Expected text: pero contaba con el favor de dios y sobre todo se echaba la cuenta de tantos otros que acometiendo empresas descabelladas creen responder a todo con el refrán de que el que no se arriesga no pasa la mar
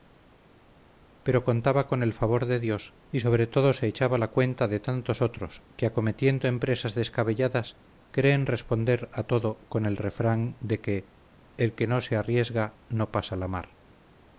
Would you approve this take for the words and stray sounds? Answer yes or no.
yes